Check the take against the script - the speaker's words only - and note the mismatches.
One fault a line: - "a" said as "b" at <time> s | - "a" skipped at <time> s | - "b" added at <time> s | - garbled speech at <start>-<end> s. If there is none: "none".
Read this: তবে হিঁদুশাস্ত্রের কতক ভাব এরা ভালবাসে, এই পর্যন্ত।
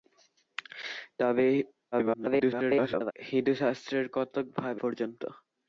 - garbled speech at 1.9-3.1 s
- "এরা ভালবাসে এই" skipped at 4.8 s